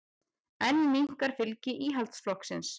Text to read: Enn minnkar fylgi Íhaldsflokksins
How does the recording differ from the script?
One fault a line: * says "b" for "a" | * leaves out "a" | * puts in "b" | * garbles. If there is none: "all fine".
all fine